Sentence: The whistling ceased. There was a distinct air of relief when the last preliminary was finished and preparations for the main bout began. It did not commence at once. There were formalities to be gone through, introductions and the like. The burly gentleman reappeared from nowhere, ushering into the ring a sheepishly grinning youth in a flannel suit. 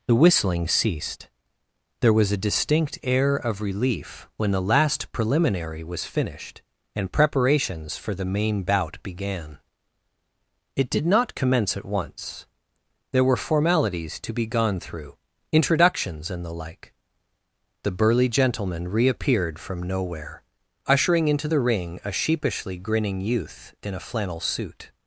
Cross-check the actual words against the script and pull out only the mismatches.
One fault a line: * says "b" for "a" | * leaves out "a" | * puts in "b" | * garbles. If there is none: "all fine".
all fine